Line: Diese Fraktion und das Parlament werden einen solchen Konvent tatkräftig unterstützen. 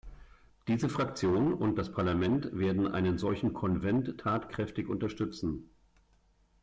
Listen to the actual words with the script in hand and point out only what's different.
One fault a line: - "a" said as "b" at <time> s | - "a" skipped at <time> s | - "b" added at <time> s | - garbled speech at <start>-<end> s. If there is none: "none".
none